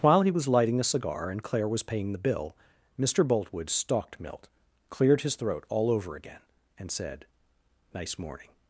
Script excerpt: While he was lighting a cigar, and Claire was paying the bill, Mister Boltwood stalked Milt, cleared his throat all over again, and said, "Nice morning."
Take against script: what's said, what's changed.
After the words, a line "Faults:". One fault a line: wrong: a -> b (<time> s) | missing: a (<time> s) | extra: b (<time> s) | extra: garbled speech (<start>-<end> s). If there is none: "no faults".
While he was lighting a cigar, and Claire was paying the bill, Mister Boltwood stalked Milt, cleared his throat all over again, and said, "Nice morning."
Faults:
no faults